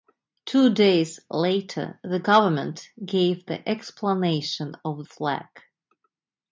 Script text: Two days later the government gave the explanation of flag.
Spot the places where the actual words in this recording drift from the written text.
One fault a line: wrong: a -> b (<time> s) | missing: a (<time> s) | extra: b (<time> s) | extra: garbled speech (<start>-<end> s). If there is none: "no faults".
no faults